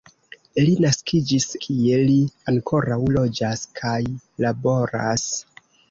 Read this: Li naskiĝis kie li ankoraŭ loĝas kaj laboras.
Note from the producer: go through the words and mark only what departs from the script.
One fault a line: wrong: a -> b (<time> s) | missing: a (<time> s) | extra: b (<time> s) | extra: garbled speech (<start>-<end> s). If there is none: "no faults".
no faults